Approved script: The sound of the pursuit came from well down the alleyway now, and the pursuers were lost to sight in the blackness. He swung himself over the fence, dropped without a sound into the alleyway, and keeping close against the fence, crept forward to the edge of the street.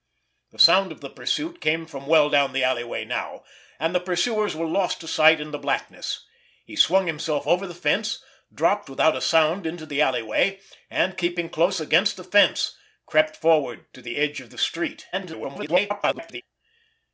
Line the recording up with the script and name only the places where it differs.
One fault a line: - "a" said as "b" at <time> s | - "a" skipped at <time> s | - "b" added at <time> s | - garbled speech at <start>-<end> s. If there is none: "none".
- garbled speech at 15.1-16.4 s